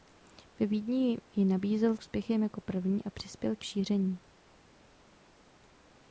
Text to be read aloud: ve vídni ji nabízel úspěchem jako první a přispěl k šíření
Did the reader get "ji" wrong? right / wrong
right